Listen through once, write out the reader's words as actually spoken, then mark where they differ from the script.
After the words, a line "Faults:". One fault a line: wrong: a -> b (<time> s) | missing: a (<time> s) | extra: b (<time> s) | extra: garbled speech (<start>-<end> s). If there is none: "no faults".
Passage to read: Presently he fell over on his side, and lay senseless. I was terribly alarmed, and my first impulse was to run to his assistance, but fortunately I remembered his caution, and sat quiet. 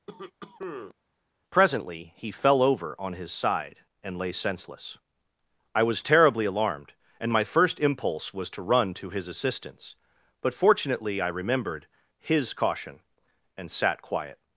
Presently he fell over on his side, and lay senseless. I was terribly alarmed, and my first impulse was to run to his assistance, but fortunately I remembered his caution, and sat quiet.
Faults:
no faults